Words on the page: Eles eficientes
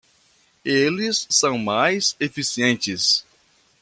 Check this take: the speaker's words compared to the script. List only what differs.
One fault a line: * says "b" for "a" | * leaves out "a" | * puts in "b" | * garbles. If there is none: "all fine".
* puts in "são mais"